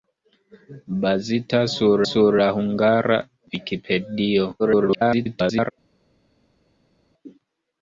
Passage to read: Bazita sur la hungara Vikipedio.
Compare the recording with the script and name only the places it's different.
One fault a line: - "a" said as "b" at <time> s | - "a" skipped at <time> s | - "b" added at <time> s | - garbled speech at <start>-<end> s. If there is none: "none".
- "sur" added at 2.1 s
- garbled speech at 4.6-5.7 s